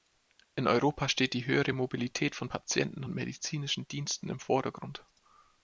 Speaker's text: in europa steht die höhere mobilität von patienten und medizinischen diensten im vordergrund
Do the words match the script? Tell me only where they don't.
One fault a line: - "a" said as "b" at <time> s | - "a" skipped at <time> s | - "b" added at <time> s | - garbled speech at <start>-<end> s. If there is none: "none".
none